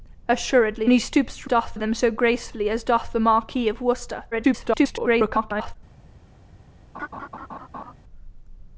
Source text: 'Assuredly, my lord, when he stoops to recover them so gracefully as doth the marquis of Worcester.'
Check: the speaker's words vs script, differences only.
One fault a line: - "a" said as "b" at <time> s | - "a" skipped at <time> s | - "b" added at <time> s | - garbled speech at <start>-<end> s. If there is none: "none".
- "my lord when" skipped at 0.9 s
- "recover" said as "doth" at 1.5 s
- garbled speech at 4.3-5.8 s